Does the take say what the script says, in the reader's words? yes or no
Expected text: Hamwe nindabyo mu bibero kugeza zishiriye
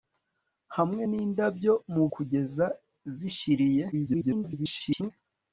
no